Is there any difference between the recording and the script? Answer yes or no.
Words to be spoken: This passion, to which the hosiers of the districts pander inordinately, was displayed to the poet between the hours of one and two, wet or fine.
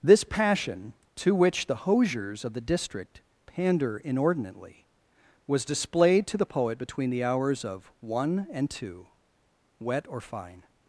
yes